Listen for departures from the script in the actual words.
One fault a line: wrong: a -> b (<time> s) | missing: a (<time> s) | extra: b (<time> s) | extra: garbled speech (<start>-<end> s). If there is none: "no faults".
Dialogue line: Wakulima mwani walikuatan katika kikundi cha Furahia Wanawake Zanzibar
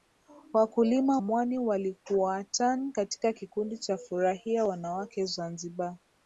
no faults